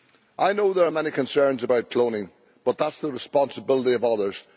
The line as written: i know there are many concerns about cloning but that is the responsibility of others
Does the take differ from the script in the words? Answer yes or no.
no